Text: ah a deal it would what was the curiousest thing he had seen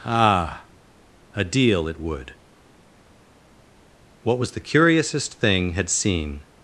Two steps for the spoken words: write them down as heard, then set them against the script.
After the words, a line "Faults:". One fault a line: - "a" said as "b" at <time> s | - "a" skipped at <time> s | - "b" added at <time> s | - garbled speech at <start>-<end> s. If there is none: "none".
ah a deal it would what was the curiousest thing had seen
Faults:
- "he" skipped at 5.7 s